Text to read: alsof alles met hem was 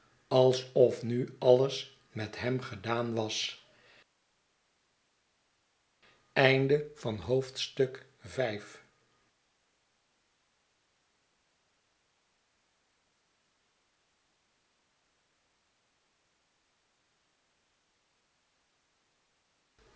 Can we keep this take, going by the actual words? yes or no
no